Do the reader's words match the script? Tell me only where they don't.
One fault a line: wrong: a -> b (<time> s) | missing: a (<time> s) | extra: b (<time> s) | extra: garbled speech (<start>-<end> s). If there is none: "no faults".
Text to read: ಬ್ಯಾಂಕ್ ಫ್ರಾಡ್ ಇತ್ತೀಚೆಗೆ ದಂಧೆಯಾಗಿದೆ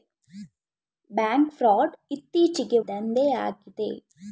no faults